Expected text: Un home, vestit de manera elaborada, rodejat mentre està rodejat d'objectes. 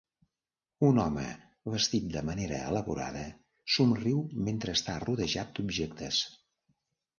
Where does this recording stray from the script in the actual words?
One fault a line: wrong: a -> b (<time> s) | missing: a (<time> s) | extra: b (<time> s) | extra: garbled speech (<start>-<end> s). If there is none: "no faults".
wrong: rodejat -> somriu (3.8 s)